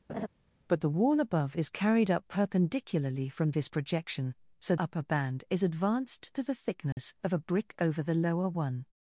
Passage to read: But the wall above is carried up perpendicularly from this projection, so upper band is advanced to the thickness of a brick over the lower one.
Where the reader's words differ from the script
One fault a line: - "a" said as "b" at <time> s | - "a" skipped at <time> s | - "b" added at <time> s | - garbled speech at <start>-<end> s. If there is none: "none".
none